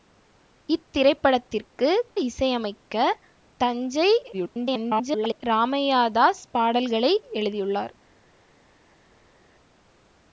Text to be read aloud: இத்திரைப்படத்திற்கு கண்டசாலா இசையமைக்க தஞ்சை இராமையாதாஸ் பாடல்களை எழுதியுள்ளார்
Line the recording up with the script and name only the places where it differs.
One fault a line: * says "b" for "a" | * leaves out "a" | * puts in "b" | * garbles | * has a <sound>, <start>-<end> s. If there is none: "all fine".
* leaves out "கண்டசாலா"
* garbles